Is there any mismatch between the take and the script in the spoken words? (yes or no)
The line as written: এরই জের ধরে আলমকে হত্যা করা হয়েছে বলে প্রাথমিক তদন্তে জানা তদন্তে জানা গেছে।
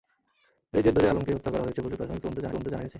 no